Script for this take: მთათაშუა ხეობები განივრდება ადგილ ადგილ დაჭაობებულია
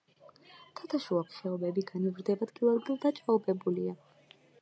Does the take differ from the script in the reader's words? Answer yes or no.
no